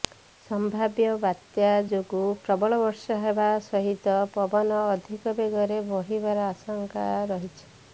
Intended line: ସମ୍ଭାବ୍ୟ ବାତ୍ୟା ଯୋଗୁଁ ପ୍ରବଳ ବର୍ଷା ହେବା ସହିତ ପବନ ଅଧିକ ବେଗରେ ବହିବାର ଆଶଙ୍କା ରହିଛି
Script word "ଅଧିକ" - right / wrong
right